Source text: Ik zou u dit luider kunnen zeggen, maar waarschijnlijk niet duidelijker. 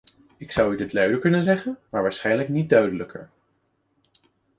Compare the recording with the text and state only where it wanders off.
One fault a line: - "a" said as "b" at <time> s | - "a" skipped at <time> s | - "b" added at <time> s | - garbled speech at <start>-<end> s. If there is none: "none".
none